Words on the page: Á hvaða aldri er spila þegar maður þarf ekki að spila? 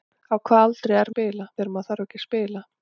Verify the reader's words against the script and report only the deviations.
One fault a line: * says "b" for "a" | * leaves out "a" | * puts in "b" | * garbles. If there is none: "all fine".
all fine